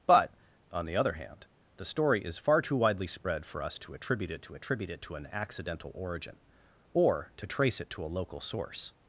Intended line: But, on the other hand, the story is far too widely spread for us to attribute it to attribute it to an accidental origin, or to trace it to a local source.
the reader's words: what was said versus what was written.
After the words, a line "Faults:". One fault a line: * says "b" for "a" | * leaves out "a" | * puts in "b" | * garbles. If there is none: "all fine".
But, on the other hand, the story is far too widely spread for us to attribute it to attribute it to an accidental origin, or to trace it to a local source.
Faults:
all fine